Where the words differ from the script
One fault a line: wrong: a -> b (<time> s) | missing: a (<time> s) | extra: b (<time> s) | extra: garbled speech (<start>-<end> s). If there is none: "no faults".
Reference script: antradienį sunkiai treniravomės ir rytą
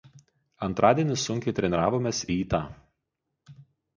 missing: ir (2.2 s)